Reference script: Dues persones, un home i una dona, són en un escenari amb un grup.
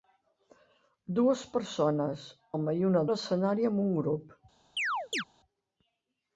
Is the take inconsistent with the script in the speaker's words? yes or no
yes